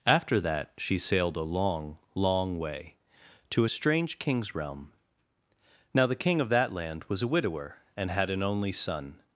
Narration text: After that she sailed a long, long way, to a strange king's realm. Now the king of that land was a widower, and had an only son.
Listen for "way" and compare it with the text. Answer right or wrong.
right